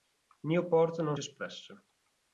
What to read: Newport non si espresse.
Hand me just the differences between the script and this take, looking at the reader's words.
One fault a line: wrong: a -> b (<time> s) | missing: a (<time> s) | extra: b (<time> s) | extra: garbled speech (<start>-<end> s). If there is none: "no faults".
missing: si (1.2 s)